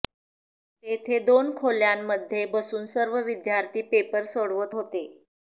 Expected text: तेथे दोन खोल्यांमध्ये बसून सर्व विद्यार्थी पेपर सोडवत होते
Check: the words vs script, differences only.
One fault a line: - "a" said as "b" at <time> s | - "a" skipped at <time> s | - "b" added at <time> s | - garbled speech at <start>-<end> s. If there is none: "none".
none